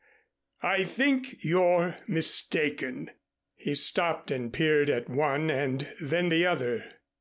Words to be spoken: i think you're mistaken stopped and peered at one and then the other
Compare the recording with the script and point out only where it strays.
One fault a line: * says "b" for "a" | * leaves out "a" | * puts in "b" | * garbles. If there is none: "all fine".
* puts in "he"